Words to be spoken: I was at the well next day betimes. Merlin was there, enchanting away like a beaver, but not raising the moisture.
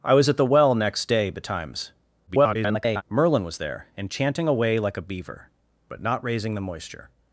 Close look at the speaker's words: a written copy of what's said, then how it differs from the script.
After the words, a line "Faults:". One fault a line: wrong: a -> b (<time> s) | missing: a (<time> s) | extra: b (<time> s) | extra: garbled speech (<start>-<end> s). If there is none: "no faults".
I was at the well next day betimes. [garbled] Merlin was there, enchanting away like a beaver, but not raising the moisture.
Faults:
extra: garbled speech (2.3-3.0 s)